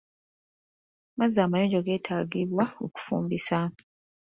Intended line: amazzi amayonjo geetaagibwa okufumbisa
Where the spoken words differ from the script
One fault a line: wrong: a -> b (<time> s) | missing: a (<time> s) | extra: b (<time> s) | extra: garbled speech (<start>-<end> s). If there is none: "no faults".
no faults